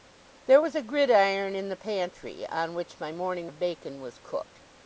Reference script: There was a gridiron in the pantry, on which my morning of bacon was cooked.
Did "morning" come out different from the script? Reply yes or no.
no